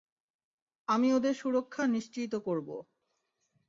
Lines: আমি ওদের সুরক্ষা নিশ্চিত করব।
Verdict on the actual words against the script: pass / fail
pass